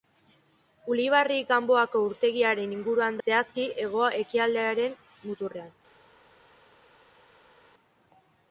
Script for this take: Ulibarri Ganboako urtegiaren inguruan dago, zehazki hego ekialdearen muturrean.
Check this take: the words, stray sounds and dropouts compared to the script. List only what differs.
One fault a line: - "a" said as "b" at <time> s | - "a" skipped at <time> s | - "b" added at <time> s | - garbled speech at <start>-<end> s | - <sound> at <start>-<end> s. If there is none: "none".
- "dago" skipped at 3.2 s